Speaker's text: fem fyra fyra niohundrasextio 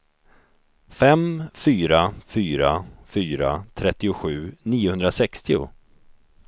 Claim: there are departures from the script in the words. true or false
true